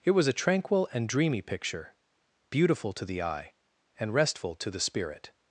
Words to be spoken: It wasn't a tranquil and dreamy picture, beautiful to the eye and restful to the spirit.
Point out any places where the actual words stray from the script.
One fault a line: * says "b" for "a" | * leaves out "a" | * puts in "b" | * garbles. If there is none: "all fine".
* says "was" for "wasn't"